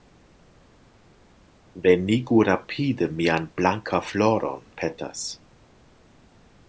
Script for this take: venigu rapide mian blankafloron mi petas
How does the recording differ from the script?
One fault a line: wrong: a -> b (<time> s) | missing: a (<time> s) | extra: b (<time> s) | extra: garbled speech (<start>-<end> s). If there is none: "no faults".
missing: mi (4.6 s)